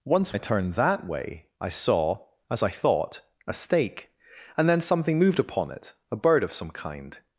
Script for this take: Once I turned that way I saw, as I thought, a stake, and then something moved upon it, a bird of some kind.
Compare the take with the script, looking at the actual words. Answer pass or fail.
pass